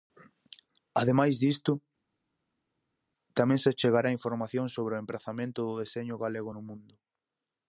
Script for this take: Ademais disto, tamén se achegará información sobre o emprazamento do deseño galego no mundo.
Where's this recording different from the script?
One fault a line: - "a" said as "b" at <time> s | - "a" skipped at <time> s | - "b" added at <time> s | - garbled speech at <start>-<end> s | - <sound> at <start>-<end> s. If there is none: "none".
none